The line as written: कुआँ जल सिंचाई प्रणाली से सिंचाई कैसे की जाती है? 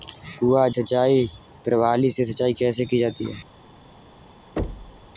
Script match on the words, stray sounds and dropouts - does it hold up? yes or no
no